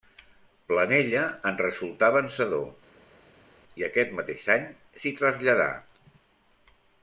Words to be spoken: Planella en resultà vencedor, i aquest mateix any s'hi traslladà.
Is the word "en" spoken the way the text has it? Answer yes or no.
yes